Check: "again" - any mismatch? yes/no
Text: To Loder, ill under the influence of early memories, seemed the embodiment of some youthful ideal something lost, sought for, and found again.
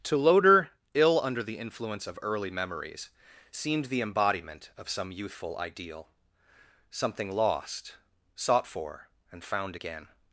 no